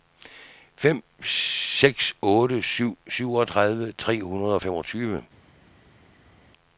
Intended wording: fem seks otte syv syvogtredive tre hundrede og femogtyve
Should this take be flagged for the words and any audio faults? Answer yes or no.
no